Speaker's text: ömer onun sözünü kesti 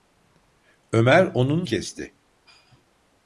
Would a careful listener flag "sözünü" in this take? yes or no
yes